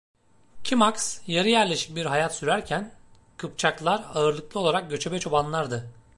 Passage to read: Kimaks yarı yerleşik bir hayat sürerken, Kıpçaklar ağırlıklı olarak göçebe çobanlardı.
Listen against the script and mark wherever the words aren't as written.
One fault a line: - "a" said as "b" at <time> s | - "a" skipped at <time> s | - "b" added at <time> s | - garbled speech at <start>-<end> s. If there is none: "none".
none